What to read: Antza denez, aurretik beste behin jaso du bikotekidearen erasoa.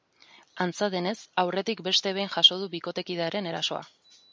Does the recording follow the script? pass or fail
pass